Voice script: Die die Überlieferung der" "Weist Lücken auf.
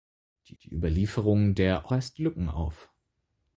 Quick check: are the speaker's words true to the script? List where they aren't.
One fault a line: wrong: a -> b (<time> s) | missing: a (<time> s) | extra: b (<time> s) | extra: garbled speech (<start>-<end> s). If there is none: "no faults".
no faults